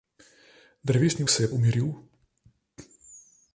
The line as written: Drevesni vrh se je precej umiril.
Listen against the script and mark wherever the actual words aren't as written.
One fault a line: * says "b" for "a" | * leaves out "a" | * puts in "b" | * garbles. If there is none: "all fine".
* leaves out "vrh"
* leaves out "precej"